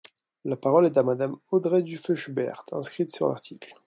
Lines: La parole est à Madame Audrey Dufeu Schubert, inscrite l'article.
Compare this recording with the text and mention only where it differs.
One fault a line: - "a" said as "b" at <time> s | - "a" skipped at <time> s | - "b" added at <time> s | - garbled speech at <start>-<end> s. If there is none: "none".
- "sur" added at 3.1 s